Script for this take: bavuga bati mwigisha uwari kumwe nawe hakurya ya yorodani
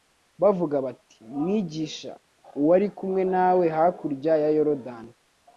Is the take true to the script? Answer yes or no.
yes